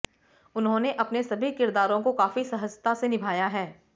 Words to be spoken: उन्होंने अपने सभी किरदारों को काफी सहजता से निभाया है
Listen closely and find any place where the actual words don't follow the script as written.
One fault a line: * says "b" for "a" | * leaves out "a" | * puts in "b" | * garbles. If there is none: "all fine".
all fine